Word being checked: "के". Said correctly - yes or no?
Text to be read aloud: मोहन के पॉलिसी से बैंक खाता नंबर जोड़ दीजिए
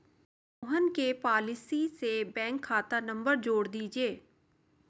yes